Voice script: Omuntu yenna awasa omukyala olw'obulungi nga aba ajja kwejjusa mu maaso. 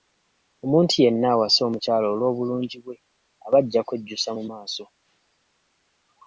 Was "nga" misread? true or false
true